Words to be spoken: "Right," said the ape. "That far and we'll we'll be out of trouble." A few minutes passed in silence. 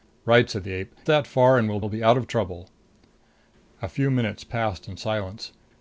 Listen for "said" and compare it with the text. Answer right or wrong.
right